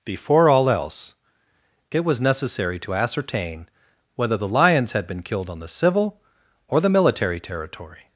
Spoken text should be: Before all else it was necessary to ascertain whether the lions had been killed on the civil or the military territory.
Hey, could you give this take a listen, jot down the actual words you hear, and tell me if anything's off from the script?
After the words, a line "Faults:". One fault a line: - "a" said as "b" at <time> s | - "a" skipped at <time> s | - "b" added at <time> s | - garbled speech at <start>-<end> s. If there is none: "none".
Before all else it was necessary to ascertain whether the lions had been killed on the civil or the military territory.
Faults:
none